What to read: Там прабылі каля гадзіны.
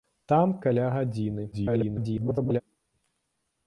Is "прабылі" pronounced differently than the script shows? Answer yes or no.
yes